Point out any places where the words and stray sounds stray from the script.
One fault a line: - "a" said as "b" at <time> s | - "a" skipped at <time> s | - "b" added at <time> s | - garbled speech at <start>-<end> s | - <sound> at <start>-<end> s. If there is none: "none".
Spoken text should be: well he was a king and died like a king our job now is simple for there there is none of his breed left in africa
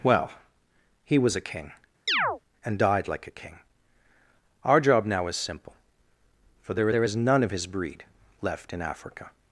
- chirp at 2.1-2.4 s